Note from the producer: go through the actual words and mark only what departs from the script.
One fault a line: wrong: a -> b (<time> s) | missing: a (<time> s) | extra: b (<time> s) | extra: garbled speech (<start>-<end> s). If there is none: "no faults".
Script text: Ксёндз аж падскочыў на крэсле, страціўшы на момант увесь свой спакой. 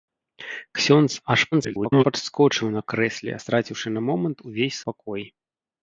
extra: garbled speech (1.5-2.0 s)
missing: свой (4.8 s)